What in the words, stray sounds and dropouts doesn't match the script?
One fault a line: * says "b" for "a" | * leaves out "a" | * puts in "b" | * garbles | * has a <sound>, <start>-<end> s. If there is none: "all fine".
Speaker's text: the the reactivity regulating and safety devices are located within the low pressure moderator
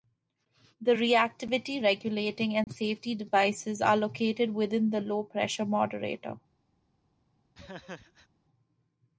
* leaves out "the"
* has a dropout, 2.6-2.7 s
* has a laugh, 7.5-8.3 s